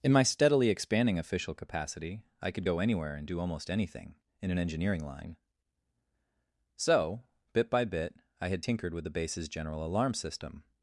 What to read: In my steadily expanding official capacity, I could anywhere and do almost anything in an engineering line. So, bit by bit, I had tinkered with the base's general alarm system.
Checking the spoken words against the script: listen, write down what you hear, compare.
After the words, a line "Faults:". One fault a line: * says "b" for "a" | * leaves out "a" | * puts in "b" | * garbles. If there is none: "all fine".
In my steadily expanding official capacity, I could go anywhere and do almost anything in an engineering line. So, bit by bit, I had tinkered with the base's general alarm system.
Faults:
* puts in "go"